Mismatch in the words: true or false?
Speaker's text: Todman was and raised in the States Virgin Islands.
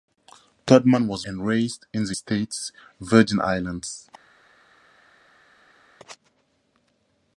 false